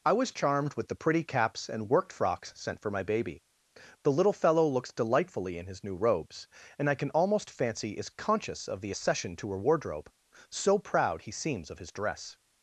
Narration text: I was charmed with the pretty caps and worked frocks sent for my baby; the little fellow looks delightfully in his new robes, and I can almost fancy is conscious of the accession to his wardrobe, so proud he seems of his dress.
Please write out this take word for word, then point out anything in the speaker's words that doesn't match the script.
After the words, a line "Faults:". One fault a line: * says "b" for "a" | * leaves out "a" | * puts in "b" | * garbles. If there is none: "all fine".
I was charmed with the pretty caps and worked frocks sent for my baby; the little fellow looks delightfully in his new robes, and I can almost fancy is conscious of the accession to her wardrobe, so proud he seems of his dress.
Faults:
* says "her" for "his"